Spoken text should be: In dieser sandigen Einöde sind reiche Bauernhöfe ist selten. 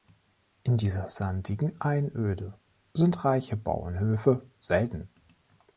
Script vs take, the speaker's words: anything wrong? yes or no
yes